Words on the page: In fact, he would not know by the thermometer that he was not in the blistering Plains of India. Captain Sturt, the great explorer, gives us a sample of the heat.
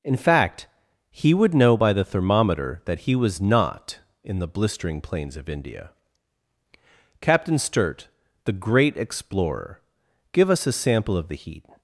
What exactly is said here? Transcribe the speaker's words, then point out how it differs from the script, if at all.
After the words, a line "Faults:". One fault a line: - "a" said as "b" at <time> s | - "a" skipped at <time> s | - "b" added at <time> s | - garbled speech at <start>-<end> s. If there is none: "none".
In fact, he would know by the thermometer that he was not in the blistering Plains of India. Captain Sturt, the great explorer, give us a sample of the heat.
Faults:
- "not" skipped at 1.5 s
- "gives" said as "give" at 10.3 s